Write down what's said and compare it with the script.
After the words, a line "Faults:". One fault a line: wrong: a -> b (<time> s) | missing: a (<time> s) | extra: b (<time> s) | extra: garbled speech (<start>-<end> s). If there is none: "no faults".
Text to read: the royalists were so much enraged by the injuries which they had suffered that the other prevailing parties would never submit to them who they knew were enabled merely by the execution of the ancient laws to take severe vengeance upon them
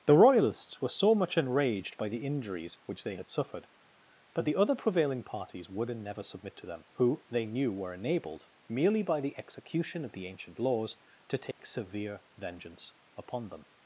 the royalists were so much enraged by the injuries which they had suffered but the other prevailing parties would and never submit to them who they knew were enabled merely by the execution of the ancient laws to take severe vengeance upon them
Faults:
wrong: that -> but (4.3 s)
extra: and (5.9 s)